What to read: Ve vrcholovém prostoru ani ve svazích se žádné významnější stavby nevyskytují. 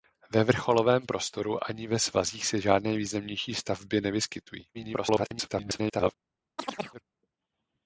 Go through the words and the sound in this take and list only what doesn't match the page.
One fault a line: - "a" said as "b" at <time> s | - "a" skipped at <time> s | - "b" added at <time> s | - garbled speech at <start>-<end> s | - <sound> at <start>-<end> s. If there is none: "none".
- garbled speech at 4.7-6.1 s
- chirp at 6.6-7.0 s